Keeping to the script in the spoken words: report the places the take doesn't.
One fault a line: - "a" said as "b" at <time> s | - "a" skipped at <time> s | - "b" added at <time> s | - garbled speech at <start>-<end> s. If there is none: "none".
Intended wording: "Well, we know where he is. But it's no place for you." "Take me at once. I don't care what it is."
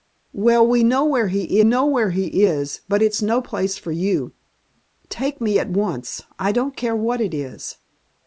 - "know where he" added at 1.6 s